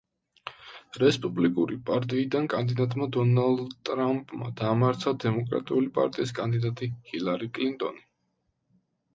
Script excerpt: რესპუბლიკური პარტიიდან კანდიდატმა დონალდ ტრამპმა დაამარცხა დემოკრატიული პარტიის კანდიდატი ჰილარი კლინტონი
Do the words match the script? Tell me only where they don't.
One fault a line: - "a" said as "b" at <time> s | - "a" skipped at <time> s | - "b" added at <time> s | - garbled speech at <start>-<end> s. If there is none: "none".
none